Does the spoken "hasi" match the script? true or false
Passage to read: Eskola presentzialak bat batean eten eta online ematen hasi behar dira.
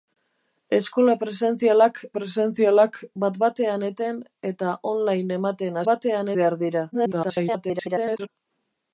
false